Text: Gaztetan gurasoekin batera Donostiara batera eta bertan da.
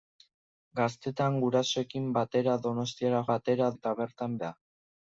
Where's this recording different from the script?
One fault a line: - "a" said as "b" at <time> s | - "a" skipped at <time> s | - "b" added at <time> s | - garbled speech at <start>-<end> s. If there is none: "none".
none